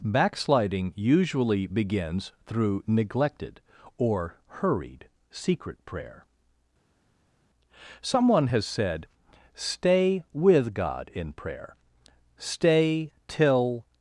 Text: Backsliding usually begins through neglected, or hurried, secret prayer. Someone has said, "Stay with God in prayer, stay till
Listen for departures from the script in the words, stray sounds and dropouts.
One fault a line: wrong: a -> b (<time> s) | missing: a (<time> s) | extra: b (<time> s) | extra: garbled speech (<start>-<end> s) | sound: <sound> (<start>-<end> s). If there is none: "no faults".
no faults